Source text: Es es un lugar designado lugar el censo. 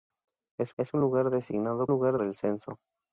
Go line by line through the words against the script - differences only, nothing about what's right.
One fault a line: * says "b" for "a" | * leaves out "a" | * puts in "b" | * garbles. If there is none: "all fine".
all fine